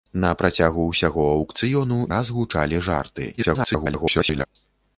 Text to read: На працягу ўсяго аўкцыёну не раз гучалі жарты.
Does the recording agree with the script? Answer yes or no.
no